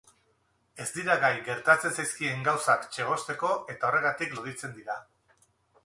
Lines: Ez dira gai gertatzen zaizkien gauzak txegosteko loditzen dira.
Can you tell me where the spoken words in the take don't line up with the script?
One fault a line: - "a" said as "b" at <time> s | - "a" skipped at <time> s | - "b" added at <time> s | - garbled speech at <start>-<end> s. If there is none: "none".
- "eta horregatik" added at 3.8 s